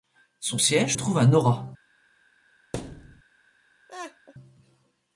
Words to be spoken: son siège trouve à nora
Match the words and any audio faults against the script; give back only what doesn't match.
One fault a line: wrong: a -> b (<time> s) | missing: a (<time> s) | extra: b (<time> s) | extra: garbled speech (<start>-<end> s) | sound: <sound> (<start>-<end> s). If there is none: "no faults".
sound: thud (2.7-3.2 s)
sound: laugh (3.9-4.3 s)